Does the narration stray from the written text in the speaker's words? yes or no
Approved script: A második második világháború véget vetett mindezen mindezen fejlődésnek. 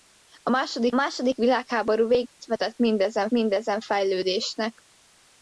no